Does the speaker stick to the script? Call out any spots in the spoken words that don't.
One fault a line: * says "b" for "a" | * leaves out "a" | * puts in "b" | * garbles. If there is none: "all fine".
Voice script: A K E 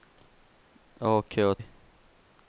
all fine